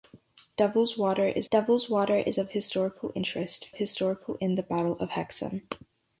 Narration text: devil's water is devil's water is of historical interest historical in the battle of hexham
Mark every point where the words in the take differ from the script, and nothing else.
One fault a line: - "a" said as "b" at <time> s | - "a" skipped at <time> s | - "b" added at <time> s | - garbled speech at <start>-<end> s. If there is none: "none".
none